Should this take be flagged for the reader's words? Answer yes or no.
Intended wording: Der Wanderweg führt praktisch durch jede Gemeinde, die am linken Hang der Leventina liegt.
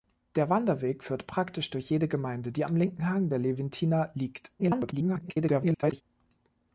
yes